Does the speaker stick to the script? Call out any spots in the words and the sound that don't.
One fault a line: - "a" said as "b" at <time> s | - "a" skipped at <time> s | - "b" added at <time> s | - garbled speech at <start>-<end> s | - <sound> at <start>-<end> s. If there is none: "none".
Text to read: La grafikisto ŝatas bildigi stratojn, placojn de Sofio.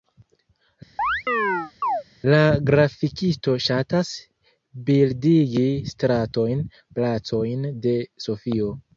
- chirp at 1.0-2.0 s